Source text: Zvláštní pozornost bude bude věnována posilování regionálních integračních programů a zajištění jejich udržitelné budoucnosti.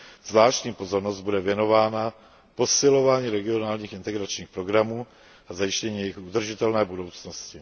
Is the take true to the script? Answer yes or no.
no